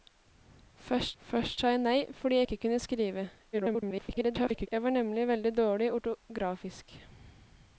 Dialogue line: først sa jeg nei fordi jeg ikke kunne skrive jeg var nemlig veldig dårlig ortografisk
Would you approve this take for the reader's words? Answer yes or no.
no